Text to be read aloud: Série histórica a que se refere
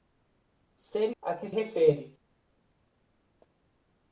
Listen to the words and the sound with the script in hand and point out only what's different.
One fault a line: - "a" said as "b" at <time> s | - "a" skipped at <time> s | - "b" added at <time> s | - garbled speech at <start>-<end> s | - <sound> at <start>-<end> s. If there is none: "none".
- "histórica" skipped at 1.1 s
- "se" skipped at 1.5 s